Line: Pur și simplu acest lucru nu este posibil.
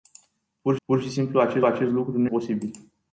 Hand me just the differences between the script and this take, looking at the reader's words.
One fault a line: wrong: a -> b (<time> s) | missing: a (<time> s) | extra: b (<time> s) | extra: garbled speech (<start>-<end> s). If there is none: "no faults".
extra: pur (0.8 s)
extra: acest (1.6 s)
missing: este (2.3 s)